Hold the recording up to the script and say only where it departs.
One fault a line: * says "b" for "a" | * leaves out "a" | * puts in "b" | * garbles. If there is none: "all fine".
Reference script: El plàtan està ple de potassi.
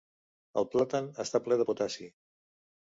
all fine